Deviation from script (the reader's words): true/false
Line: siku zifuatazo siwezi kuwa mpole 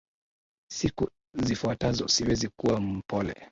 false